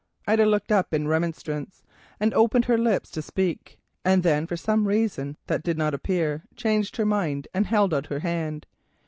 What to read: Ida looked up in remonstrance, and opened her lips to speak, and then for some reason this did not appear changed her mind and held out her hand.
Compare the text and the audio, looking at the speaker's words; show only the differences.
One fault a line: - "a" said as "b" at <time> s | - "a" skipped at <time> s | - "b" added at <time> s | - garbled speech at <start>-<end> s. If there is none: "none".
- "this" said as "that" at 5.5 s